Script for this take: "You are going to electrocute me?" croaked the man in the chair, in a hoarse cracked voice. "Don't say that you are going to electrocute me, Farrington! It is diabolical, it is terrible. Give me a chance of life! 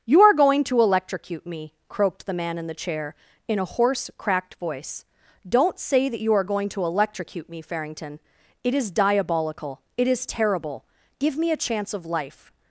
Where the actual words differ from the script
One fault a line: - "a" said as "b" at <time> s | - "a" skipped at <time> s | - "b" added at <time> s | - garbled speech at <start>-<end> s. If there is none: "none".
none